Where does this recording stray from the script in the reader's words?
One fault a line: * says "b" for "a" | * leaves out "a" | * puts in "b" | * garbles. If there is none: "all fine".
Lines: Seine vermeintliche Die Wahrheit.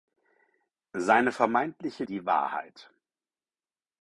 all fine